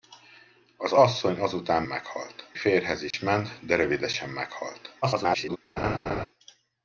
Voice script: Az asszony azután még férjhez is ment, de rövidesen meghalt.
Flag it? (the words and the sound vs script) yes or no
yes